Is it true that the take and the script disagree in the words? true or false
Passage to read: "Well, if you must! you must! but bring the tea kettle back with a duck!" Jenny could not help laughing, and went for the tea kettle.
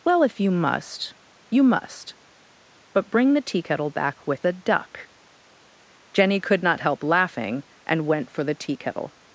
false